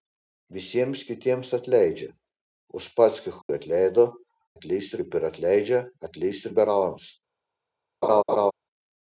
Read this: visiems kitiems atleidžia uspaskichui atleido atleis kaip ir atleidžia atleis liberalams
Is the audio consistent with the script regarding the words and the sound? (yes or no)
no